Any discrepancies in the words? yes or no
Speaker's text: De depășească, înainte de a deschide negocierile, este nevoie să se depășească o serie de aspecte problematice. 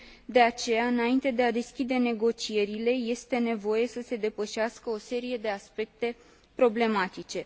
yes